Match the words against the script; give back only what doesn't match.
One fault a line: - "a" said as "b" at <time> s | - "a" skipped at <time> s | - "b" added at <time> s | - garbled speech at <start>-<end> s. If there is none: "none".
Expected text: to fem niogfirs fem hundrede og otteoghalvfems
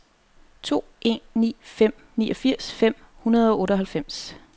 - "en ni" added at 1.0 s